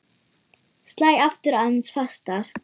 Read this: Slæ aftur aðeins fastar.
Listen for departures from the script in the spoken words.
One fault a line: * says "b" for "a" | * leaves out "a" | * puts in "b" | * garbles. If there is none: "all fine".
all fine